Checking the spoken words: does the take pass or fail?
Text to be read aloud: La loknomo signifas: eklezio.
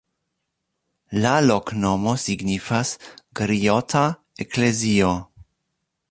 fail